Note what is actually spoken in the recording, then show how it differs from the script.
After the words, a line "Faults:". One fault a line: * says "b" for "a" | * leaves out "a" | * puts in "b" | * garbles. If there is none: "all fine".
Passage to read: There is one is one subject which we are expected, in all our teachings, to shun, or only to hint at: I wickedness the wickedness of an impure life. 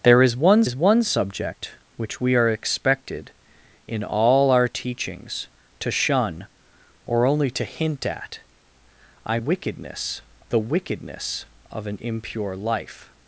There is one is one subject which we are expected, in all our teachings, to shun, or only to hint at: I wickedness the wickedness of an impure life.
Faults:
all fine